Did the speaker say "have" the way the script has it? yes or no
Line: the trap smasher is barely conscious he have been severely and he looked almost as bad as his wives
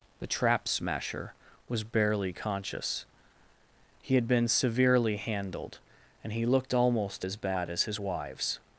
no